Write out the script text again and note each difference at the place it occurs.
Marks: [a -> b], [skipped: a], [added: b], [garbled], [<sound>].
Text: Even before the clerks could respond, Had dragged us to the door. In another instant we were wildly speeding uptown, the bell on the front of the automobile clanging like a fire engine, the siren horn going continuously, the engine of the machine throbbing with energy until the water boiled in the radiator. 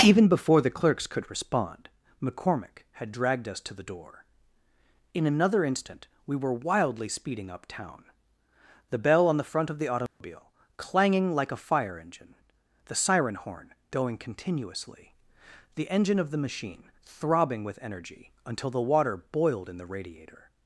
Even before the clerks could respond, [added: McCormick] Had dragged us to the door. In another instant we were wildly speeding uptown, the bell on the front of the automobile [dropout] clanging like a fire engine, the siren horn going continuously, the engine of the machine throbbing with energy until the water boiled in the radiator.